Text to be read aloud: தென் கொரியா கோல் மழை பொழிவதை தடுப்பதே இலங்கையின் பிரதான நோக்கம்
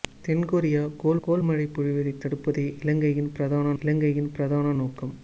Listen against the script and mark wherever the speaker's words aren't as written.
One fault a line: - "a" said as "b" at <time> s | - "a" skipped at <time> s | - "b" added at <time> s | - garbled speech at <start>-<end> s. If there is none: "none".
- "கோல்" added at 1.2 s
- "இலங்கையின் பிரதான" added at 3.8 s